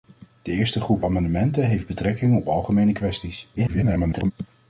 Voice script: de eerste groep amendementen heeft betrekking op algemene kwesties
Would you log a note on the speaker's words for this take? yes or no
yes